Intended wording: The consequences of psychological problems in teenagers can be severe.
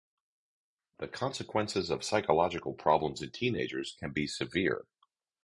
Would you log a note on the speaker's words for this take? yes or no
no